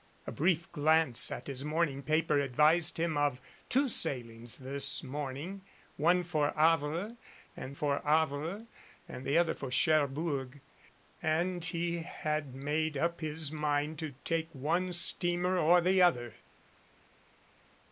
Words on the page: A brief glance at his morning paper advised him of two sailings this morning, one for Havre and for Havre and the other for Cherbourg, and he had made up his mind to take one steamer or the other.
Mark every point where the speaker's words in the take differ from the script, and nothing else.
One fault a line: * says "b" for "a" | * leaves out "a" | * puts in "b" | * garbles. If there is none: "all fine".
all fine